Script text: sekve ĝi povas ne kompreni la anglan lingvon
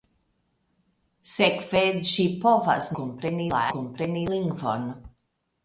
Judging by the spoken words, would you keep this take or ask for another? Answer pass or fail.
fail